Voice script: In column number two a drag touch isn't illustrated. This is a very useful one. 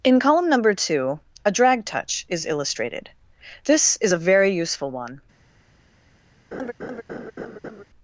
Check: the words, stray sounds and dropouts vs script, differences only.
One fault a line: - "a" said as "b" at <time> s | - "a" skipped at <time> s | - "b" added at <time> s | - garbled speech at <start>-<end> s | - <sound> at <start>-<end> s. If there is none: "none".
- "isn't" said as "is" at 2.3 s
- laugh at 6.5-7.8 s